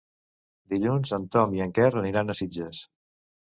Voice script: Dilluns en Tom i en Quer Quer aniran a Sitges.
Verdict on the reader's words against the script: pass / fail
fail